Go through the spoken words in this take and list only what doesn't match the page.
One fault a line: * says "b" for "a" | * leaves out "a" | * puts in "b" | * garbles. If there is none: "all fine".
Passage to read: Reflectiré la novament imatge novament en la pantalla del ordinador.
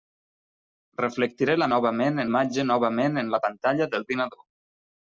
all fine